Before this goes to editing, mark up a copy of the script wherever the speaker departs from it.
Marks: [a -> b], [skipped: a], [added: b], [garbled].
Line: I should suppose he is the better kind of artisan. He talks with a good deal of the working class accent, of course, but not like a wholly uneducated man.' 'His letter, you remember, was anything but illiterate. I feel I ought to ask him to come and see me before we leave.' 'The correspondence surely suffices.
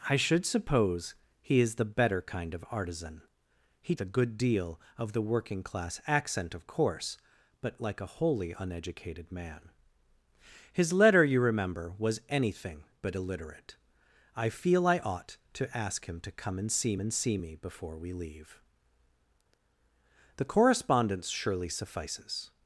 I should suppose he is the better kind of artisan. He [skipped: talks with] a good deal of the working class accent, of course, but [skipped: not] like a wholly uneducated man.' 'His letter, you remember, was anything but illiterate. I feel I ought to ask him to come and see [added: and see] me before we leave.' 'The correspondence surely suffices.